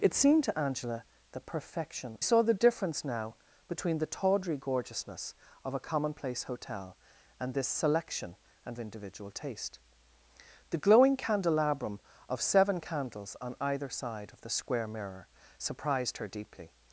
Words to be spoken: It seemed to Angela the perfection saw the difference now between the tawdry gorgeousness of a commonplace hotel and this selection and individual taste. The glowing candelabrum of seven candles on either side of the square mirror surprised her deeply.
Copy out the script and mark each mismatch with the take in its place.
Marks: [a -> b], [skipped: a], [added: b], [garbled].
It seemed to Angela the perfection saw the difference now between the tawdry gorgeousness of a commonplace hotel and this selection and individual taste. The glowing candelabrum of seven candles on either side of the square mirror surprised her deeply.